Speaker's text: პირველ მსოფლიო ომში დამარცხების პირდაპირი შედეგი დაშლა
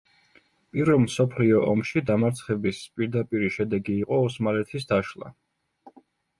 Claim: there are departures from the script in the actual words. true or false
true